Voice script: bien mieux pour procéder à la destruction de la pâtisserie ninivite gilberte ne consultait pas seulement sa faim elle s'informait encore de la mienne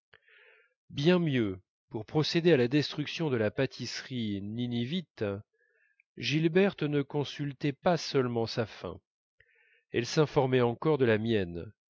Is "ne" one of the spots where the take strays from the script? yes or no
no